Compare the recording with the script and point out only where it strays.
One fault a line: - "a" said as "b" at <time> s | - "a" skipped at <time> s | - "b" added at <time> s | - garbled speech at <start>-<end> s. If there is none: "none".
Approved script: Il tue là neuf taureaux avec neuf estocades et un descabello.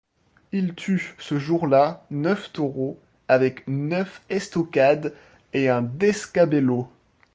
- "ce jour" added at 1.2 s